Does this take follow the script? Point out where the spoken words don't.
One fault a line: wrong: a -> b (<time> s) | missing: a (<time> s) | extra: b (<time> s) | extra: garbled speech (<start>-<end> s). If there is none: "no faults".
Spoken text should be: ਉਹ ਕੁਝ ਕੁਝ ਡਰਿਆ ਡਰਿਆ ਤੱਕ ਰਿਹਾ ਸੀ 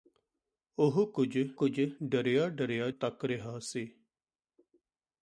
no faults